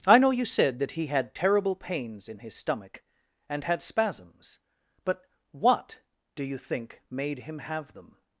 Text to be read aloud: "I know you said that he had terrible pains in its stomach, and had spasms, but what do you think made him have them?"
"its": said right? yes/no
no